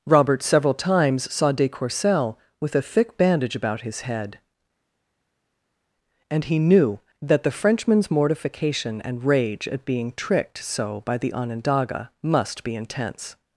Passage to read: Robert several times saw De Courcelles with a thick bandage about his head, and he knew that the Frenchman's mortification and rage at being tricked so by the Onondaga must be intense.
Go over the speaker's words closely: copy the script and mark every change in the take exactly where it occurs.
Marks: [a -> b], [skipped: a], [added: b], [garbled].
Robert several times saw De Courcelles with a thick bandage about his head, and he knew that the Frenchman's mortification and rage at being tricked so by the Onondaga must be intense.